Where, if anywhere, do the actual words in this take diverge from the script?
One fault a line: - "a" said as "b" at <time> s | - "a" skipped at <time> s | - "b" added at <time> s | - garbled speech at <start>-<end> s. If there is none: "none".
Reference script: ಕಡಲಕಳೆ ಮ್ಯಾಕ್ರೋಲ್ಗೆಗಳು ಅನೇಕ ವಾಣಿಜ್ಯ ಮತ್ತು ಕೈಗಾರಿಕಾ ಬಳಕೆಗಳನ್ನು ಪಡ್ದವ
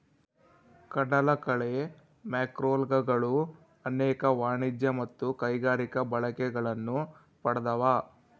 none